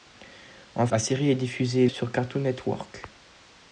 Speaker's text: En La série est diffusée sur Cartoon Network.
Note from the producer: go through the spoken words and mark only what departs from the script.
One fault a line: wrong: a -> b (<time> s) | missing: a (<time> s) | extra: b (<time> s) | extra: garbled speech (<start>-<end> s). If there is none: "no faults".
no faults